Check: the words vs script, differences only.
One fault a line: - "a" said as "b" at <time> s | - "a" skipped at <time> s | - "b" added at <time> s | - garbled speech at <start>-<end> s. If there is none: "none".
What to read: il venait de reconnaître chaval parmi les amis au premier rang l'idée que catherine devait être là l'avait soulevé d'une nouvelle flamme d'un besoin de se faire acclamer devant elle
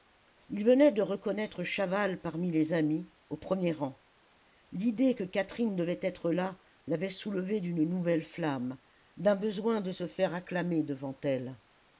none